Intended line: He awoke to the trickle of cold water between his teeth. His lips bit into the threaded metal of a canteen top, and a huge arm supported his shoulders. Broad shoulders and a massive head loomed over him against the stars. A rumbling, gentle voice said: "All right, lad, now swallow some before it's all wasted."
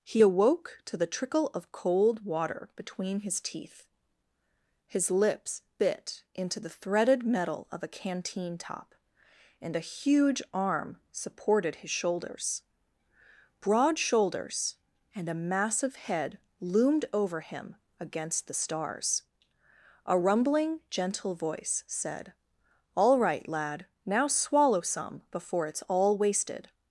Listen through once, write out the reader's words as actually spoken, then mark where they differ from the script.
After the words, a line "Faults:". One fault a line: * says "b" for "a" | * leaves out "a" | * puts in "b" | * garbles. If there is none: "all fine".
He awoke to the trickle of cold water between his teeth. His lips bit into the threaded metal of a canteen top, and a huge arm supported his shoulders. Broad shoulders and a massive head loomed over him against the stars. A rumbling, gentle voice said: "All right, lad, now swallow some before it's all wasted."
Faults:
all fine